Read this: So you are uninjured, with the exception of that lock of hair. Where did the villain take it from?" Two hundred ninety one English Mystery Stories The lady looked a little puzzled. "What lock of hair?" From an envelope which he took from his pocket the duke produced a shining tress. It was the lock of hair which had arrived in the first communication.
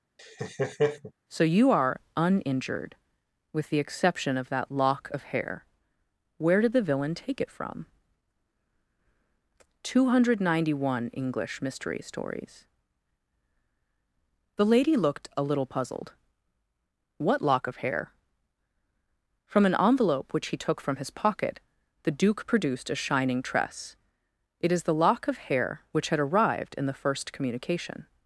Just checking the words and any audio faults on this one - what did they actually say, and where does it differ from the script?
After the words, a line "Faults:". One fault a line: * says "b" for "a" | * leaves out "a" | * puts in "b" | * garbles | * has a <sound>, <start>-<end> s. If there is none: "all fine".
So you are uninjured, with the exception of that lock of hair. Where did the villain take it from?" Two hundred ninety one English Mystery Stories The lady looked a little puzzled. "What lock of hair?" From an envelope which he took from his pocket the duke produced a shining tress. It is the lock of hair which had arrived in the first communication.
Faults:
* has a laugh, 0.2-1.1 s
* says "is" for "was"